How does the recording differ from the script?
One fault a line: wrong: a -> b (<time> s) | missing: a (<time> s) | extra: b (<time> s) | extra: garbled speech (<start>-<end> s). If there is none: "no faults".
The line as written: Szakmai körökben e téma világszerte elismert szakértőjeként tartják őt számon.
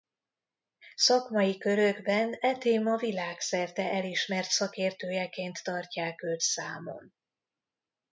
no faults